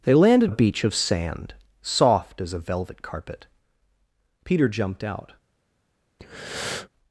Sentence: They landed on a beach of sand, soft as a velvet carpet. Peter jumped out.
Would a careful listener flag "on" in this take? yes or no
yes